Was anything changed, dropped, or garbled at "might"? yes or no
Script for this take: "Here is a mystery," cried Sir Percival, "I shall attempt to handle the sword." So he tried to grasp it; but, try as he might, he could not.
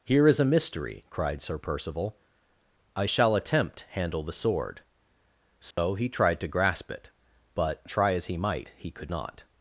no